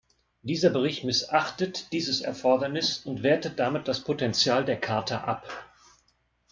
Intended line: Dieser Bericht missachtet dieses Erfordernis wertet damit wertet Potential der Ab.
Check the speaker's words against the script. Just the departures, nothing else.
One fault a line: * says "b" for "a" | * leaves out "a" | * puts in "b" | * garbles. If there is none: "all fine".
* puts in "und"
* says "das" for "wertet"
* puts in "Charta"